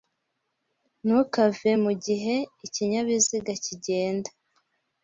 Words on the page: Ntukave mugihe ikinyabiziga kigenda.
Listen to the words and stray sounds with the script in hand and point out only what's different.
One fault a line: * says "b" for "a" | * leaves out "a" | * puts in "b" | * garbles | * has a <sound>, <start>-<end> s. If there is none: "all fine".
all fine